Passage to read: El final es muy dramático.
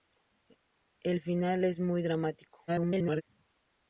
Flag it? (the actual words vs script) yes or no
yes